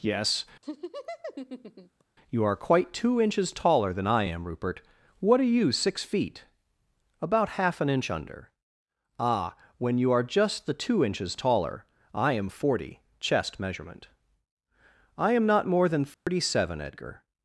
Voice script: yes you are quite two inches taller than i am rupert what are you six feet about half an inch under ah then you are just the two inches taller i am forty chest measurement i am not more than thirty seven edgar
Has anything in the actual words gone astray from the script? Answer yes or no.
yes